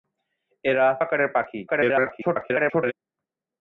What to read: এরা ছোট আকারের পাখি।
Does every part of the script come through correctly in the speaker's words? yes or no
no